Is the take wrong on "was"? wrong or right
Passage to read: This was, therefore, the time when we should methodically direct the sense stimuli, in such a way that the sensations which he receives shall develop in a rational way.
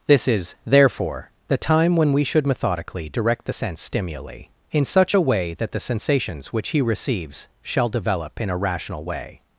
wrong